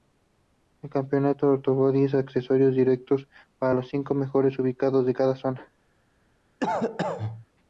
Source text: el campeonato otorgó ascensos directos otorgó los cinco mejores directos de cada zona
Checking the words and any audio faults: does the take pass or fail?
fail